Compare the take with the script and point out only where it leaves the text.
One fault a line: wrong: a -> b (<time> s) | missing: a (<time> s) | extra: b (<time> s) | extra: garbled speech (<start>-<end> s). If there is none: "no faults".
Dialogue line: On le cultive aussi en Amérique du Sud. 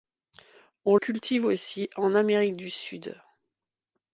missing: le (0.9 s)